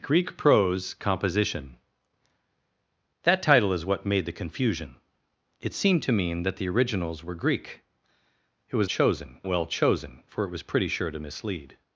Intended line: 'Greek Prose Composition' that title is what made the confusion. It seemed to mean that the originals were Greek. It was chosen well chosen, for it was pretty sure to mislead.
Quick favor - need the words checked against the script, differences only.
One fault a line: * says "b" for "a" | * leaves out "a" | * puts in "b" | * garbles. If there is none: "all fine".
all fine